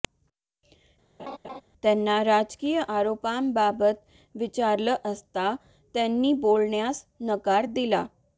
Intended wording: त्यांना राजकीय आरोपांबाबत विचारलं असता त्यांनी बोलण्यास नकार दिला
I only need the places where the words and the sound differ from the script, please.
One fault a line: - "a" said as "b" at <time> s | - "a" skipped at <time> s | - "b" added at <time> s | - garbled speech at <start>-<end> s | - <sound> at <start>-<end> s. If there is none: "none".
- laugh at 1.2-1.6 s